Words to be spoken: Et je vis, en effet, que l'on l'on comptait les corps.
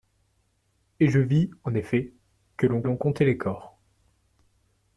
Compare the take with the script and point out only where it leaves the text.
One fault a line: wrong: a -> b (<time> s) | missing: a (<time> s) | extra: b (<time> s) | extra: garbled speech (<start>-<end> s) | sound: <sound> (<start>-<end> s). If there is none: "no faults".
no faults